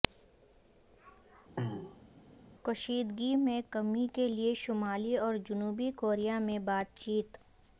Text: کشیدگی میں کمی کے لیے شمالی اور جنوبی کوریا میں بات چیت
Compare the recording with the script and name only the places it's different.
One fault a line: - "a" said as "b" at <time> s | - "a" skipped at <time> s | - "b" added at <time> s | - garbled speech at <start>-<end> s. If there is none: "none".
none